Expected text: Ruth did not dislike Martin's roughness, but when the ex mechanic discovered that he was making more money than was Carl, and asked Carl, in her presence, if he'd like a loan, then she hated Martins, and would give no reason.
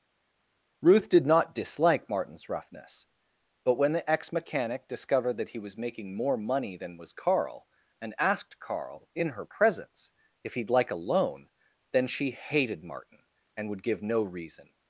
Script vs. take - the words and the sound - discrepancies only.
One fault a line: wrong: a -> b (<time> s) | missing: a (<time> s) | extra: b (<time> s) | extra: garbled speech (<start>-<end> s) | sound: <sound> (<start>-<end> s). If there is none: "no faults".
wrong: Martins -> Martin (12.8 s)